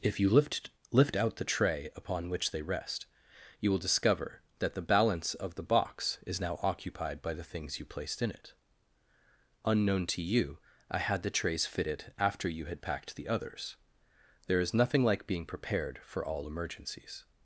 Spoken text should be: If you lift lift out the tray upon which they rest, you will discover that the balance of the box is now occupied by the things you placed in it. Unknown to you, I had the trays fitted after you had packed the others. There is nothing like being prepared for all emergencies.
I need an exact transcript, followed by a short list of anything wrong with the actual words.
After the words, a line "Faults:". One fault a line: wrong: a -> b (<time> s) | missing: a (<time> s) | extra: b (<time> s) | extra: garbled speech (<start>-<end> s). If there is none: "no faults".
If you lift lift out the tray upon which they rest, you will discover that the balance of the box is now occupied by the things you placed in it. Unknown to you, I had the trays fitted after you had packed the others. There is nothing like being prepared for all emergencies.
Faults:
no faults